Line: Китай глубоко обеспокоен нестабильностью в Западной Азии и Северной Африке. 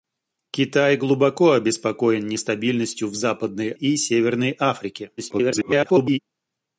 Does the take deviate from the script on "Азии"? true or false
true